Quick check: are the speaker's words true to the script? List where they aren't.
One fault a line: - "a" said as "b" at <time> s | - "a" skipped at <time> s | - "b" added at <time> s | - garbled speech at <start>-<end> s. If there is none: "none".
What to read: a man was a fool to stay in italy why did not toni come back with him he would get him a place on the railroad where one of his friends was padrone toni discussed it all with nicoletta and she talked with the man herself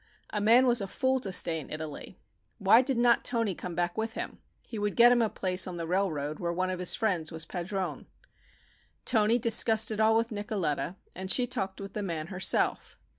none